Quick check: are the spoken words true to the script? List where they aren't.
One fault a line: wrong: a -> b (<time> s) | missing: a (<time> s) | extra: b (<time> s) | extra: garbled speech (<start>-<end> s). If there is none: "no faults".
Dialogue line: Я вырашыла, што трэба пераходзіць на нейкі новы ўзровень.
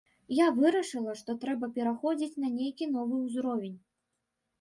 no faults